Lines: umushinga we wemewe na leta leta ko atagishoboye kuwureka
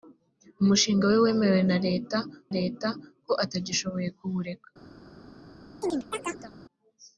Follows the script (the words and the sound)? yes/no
no